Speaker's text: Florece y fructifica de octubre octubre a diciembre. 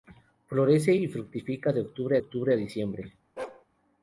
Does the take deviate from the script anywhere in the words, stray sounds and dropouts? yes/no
yes